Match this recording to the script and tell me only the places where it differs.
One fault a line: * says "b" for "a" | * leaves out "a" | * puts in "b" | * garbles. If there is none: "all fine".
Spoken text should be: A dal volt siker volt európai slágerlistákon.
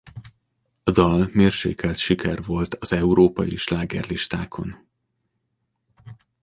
* says "mérsékelt" for "volt"
* puts in "az"